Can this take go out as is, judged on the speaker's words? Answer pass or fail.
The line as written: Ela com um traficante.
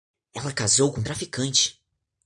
fail